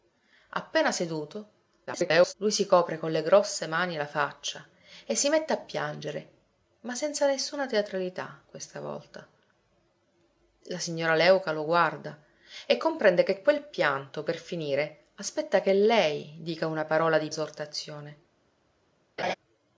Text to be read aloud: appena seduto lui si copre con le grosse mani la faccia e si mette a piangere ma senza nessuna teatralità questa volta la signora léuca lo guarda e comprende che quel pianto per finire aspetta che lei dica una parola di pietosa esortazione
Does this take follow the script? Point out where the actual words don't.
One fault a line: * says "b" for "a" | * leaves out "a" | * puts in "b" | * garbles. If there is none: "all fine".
* garbles
* leaves out "pietosa"